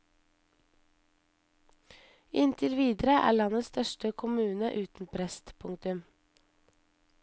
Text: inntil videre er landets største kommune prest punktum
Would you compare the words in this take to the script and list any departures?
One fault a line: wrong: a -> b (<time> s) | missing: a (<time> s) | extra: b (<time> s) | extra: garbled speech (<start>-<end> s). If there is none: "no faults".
extra: uten (4.8 s)